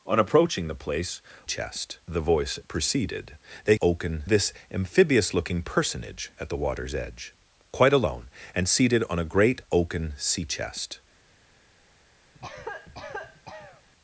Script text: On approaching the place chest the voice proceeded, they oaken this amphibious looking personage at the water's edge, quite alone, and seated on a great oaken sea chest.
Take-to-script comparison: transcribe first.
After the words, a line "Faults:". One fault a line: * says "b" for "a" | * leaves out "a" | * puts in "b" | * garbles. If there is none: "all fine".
On approaching the place chest the voice proceeded, they oaken this amphibious looking personage at the water's edge, quite alone, and seated on a great oaken sea chest.
Faults:
all fine